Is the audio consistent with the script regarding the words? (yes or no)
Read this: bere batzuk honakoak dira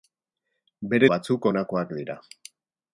yes